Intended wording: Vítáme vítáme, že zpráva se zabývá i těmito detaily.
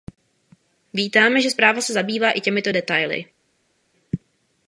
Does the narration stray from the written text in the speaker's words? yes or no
yes